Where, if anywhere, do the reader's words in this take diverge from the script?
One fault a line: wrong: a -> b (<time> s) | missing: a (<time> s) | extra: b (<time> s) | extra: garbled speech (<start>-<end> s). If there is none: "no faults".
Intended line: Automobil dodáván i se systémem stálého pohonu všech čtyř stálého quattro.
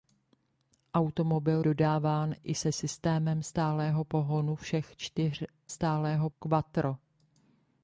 no faults